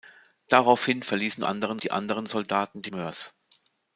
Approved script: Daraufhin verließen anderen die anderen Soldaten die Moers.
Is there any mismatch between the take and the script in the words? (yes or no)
no